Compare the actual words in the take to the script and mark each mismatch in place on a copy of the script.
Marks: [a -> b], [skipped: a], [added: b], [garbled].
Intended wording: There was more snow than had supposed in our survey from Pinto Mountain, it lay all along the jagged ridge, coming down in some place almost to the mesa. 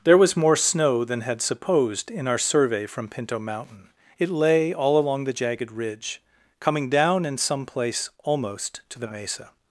There was more snow than had supposed in our survey from Pinto Mountain, it lay all along the jagged ridge, coming down in some place almost to the mesa.